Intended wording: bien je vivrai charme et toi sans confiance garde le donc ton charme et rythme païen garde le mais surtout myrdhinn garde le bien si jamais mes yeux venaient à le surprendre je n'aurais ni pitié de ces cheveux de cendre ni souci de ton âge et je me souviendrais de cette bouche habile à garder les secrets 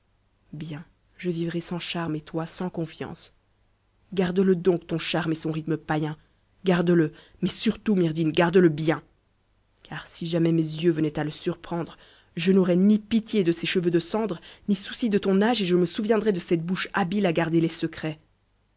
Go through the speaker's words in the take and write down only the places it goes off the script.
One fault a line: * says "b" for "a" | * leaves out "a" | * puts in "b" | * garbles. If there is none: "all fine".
* puts in "sans"
* puts in "son"
* puts in "car"